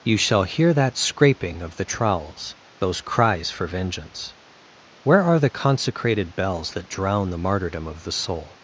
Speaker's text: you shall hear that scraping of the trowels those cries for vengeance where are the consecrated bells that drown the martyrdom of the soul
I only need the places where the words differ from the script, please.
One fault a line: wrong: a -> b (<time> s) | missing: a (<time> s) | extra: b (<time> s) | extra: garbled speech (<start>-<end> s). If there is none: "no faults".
no faults